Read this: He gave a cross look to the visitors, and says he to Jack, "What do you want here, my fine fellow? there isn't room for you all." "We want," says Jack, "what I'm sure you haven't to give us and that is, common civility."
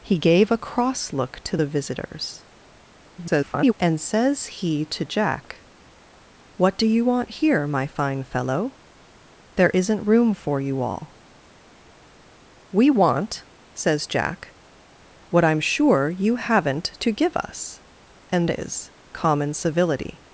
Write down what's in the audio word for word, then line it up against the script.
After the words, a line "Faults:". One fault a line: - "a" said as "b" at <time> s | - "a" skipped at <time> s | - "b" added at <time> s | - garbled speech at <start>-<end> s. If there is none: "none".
He gave a cross look to the visitors, [garbled] and says he to Jack, "What do you want here, my fine fellow? there isn't room for you all." "We want," says Jack, "what I'm sure you haven't to give us and is, common civility."
Faults:
- garbled speech at 3.2-3.7 s
- "that" skipped at 18.5 s